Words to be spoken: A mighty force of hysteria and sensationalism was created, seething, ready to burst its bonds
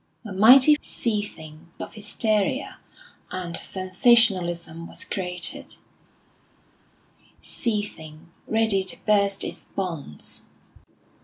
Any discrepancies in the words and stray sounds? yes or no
yes